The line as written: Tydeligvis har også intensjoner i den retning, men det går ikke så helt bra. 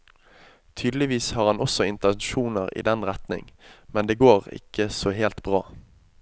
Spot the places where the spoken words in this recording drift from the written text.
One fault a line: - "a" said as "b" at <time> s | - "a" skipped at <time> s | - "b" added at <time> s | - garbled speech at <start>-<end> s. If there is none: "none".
- "han" added at 1.5 s